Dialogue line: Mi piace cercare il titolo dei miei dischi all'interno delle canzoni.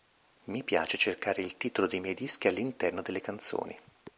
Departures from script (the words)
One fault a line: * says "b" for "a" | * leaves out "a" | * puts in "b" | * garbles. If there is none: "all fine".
all fine